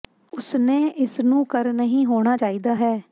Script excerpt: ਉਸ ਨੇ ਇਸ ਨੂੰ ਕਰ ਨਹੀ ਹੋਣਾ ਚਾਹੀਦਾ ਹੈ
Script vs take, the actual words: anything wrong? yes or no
no